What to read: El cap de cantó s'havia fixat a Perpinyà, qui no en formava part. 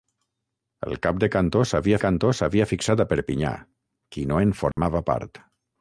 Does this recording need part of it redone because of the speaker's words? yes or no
yes